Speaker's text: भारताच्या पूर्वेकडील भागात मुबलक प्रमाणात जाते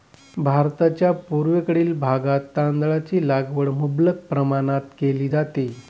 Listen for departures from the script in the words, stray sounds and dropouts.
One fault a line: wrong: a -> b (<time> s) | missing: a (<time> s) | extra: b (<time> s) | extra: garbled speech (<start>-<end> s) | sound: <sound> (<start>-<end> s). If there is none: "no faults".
extra: तांदळाची लागवड (2.6 s)
extra: केली (5.0 s)